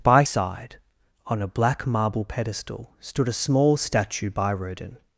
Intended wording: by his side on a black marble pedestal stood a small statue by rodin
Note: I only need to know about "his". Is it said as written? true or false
false